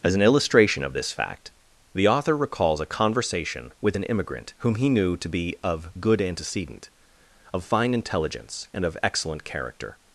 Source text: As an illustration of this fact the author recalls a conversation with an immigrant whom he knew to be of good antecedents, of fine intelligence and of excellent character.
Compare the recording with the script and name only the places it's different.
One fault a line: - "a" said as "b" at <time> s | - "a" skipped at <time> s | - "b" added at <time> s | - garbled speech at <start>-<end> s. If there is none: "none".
- "antecedents" said as "antecedent" at 6.2 s